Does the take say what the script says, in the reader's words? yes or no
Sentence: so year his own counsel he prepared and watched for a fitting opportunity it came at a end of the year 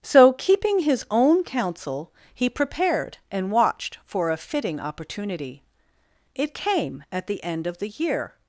no